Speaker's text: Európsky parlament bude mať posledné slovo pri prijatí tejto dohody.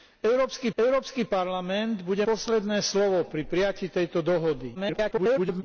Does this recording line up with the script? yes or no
no